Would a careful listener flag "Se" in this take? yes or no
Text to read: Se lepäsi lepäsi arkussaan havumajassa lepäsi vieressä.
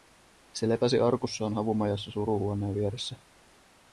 no